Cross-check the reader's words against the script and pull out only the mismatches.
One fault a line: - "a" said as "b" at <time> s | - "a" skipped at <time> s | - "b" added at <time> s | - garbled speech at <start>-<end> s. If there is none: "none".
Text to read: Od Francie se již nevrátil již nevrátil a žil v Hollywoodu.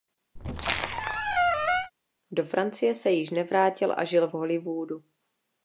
- "Od" said as "Do" at 2.3 s
- "již nevrátil" skipped at 3.9 s